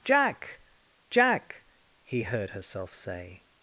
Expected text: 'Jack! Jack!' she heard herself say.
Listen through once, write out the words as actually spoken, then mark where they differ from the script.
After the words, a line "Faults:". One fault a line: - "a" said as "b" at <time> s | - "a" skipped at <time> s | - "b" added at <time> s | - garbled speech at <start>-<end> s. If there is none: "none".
'Jack! Jack!' he heard herself say.
Faults:
- "she" said as "he" at 2.0 s